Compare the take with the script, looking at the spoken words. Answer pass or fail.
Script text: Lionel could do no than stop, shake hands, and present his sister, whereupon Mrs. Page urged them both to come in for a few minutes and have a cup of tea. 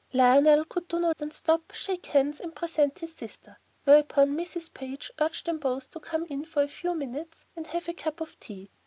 pass